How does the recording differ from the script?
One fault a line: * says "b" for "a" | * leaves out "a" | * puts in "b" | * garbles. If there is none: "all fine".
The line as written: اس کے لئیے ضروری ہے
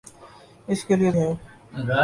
* leaves out "ضروری"